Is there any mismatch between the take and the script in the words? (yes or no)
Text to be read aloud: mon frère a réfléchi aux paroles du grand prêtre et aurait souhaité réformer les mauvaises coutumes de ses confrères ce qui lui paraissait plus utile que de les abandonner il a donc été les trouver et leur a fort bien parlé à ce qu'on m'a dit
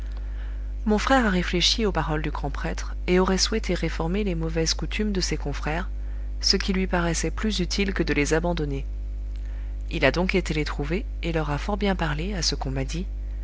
no